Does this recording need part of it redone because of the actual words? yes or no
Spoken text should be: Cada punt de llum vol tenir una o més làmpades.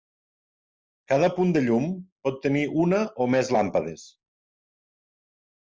yes